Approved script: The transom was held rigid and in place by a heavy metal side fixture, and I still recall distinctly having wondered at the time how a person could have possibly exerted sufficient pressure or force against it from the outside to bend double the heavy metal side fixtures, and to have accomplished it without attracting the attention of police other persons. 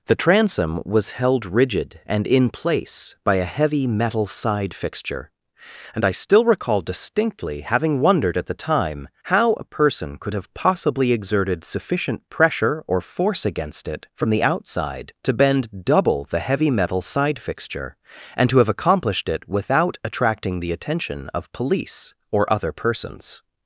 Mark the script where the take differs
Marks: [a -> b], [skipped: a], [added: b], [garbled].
The transom was held rigid and in place by a heavy metal side fixture, and I still recall distinctly having wondered at the time how a person could have possibly exerted sufficient pressure or force against it from the outside to bend double the heavy metal side [fixtures, -> fixture] and to have accomplished it without attracting the attention of police [added: or] other persons.